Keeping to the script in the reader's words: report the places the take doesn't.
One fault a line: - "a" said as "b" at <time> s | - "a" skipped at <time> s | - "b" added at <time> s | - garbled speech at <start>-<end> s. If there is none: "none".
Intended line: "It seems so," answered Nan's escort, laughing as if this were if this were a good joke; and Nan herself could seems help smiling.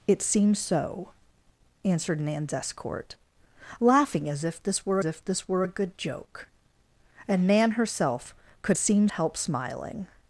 none